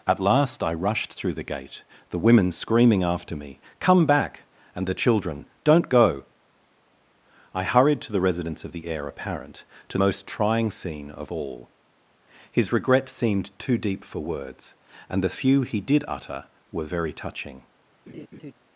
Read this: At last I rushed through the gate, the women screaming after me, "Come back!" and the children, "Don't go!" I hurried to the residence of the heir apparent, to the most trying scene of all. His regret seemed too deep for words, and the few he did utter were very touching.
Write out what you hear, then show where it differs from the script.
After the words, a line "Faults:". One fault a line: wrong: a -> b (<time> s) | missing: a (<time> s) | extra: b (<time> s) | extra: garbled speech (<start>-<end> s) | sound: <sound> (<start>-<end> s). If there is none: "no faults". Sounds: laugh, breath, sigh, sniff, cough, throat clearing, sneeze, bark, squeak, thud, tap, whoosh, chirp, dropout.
At last I rushed through the gate, the women screaming after me, "Come back!" and the children, "Don't go!" I hurried to the residence of the heir apparent, to most trying scene of all. His regret seemed too deep for words, and the few he did utter were very touching.
Faults:
missing: the (10.0 s)
sound: laugh (18.1-18.5 s)